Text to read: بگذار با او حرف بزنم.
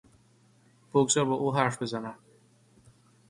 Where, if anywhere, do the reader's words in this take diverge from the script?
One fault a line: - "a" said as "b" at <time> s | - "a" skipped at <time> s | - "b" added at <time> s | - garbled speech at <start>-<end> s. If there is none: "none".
none